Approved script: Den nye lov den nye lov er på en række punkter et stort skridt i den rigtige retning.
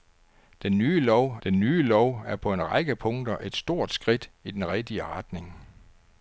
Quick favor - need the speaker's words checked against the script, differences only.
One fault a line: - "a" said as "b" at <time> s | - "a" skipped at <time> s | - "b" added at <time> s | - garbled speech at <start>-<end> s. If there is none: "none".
none